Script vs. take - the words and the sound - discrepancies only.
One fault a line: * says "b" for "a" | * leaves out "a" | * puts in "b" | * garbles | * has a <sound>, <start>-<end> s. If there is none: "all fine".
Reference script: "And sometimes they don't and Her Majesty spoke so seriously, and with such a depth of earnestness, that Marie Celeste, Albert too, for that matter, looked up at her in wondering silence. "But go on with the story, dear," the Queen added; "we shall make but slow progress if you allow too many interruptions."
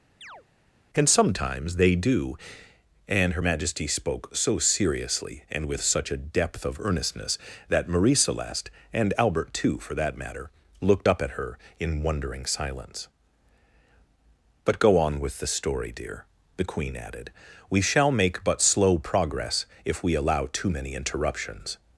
* has a chirp, 0.2-0.4 s
* says "do" for "don't"
* puts in "and"
* says "we" for "you"